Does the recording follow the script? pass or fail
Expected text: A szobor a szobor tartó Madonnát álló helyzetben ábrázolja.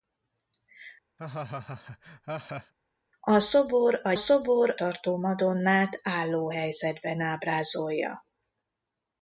pass